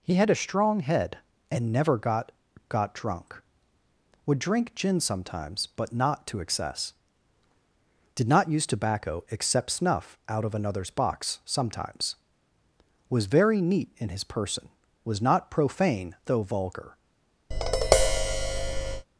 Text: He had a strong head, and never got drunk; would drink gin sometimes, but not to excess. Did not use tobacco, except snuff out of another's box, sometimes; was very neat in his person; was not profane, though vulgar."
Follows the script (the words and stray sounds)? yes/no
no